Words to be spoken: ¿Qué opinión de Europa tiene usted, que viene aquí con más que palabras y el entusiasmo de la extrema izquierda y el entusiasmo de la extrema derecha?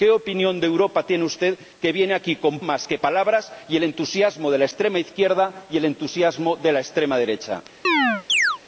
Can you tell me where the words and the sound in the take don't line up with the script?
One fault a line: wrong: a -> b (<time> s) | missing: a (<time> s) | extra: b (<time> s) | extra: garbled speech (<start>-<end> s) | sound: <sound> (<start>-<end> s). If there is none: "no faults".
sound: chirp (7.8-8.6 s)